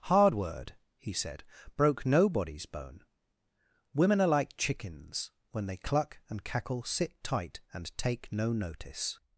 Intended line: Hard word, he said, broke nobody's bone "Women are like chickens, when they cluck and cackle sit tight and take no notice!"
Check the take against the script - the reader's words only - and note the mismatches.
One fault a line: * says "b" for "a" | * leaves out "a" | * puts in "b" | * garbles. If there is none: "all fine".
all fine